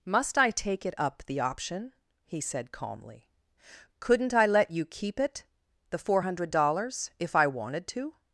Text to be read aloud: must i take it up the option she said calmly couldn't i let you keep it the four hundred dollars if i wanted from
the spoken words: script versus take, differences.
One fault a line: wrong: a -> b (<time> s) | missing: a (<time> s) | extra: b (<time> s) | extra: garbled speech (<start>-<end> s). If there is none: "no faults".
wrong: she -> he (2.2 s)
wrong: from -> to (7.9 s)